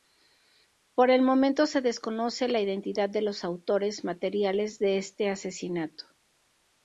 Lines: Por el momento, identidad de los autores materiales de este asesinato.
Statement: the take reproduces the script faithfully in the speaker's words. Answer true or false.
false